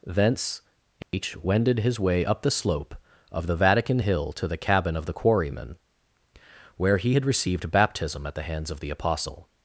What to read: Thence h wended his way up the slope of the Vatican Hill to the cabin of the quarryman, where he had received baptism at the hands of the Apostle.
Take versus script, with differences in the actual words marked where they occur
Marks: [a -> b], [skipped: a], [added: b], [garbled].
Thence h wended his way up the slope of the Vatican Hill to the cabin of the quarryman, where he had received baptism at the hands of the Apostle.